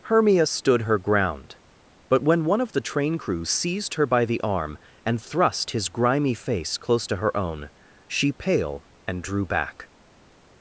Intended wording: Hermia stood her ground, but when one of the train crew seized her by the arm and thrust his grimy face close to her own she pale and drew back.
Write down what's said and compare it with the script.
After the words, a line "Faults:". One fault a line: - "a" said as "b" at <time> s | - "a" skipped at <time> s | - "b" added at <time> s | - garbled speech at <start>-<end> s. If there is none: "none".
Hermia stood her ground, but when one of the train crew seized her by the arm and thrust his grimy face close to her own she pale and drew back.
Faults:
none